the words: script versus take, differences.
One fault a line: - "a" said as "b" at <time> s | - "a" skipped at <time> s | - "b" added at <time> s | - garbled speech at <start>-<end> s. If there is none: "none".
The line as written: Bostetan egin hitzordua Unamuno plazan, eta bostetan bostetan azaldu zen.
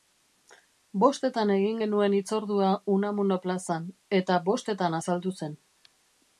- "genuen" added at 1.8 s
- "bostetan" skipped at 5.0 s